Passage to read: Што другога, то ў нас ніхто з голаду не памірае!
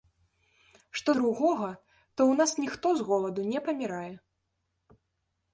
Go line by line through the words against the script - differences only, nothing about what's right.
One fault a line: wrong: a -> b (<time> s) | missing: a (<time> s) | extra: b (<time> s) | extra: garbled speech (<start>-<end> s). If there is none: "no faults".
no faults